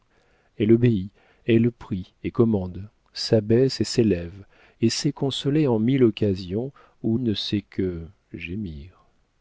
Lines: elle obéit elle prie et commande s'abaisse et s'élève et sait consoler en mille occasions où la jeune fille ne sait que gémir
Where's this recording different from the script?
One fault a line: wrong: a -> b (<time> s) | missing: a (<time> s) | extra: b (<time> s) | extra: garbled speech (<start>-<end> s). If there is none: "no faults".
missing: la jeune fille (7.2 s)